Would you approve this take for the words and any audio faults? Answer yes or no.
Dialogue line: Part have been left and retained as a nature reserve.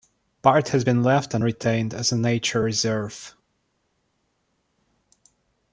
no